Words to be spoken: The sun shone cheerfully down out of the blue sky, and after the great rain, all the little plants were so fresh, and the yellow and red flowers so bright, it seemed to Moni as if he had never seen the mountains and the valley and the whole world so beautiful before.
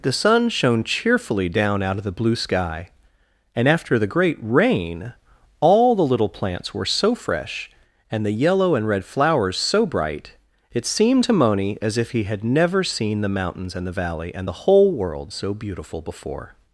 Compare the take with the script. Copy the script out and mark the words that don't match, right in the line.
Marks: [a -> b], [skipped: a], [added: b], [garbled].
The sun shone cheerfully down out of the blue sky, and after the great rain, all the little plants were so fresh, and the yellow and red flowers so bright, it seemed to Moni as if he had never seen the mountains and the valley and the whole world so beautiful before.